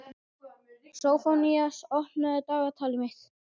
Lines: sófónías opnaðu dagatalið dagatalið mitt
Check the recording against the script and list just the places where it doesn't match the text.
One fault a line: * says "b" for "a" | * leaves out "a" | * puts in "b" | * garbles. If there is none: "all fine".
* leaves out "dagatalið"